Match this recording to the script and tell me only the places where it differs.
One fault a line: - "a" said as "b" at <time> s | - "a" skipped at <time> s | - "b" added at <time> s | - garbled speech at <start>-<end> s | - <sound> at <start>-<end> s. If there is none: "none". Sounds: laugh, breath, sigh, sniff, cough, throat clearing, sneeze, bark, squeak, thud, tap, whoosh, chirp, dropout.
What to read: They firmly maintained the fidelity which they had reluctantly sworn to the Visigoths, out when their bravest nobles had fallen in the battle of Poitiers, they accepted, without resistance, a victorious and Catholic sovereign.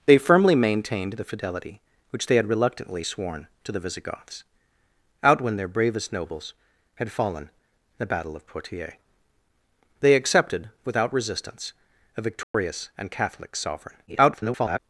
- dropout at 12.4-12.5 s
- garbled speech at 14.1-14.8 s